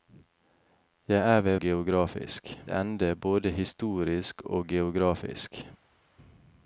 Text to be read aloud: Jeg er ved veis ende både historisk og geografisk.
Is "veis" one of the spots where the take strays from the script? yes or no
yes